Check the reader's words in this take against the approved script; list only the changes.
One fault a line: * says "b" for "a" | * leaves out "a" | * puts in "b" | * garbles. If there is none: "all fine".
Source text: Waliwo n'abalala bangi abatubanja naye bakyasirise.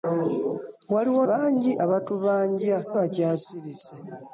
* leaves out "n'abalala"
* leaves out "naye"